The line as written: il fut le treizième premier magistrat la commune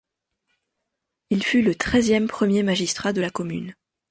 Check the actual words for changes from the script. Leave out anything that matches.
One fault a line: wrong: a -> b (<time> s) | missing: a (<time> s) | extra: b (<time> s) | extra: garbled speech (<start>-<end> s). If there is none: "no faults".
extra: de (3.1 s)